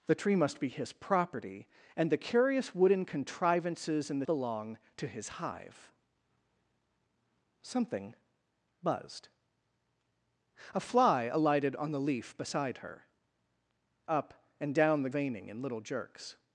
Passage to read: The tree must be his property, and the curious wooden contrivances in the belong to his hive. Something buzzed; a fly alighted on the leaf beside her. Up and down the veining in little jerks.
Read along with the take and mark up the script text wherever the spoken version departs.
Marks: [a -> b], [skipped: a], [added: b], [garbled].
The tree must be his property, and the curious wooden contrivances in the belong to his hive. Something buzzed; a fly alighted on the leaf beside her. Up and down the veining in little jerks.